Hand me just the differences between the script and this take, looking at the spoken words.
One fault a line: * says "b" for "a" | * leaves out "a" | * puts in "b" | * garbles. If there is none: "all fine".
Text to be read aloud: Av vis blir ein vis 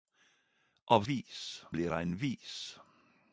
all fine